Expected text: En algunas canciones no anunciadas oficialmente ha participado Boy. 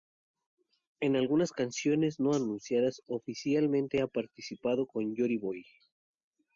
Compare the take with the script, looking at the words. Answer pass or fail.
fail